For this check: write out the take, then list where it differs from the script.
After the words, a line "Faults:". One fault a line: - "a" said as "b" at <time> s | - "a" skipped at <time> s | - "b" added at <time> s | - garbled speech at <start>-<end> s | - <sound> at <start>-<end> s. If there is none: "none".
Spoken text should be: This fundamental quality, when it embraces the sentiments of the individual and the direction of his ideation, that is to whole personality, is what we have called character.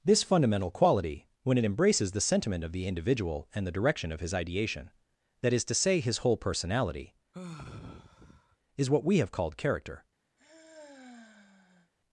This fundamental quality, when it embraces the sentiment of the individual and the direction of his ideation, that is to say, his whole personality, is what we have called character.
Faults:
- "sentiments" said as "sentiment" at 2.2 s
- "say his" added at 5.8 s
- sigh at 7.3-8.6 s
- sigh at 10.4-11.9 s